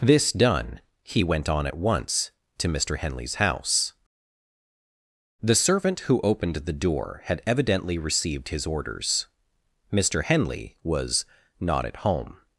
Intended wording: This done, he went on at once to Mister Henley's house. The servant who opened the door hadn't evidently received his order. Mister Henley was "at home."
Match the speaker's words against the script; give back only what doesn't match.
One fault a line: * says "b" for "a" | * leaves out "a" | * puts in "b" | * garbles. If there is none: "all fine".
* says "had" for "hadn't"
* says "orders" for "order"
* puts in "not"